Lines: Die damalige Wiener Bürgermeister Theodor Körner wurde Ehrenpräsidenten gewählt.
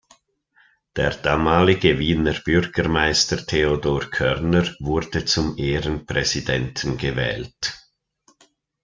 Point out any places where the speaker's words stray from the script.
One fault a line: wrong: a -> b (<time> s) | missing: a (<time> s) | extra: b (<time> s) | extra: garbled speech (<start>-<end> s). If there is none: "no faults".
wrong: Die -> Der (0.9 s)
extra: zum (5.2 s)